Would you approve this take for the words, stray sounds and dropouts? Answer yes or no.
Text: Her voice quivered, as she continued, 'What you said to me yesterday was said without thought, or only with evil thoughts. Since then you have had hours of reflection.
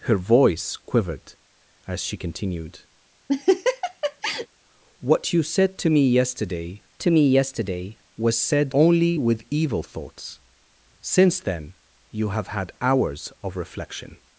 no